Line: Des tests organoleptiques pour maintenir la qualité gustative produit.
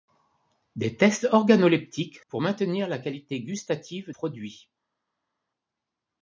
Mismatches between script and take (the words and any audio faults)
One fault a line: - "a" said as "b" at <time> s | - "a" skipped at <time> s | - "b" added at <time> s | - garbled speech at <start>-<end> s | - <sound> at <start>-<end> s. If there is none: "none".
none